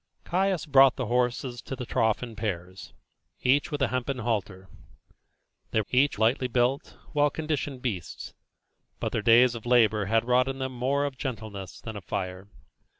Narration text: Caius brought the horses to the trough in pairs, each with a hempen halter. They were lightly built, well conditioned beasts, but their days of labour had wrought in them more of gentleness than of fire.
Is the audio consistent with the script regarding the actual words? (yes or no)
no